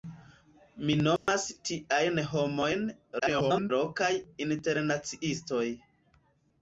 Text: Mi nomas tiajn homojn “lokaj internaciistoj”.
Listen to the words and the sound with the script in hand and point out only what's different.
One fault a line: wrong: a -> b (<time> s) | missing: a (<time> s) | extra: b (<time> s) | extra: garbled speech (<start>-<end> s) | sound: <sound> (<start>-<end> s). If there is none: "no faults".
sound: dropout (1.2-1.3 s)
extra: garbled speech (3.2-3.7 s)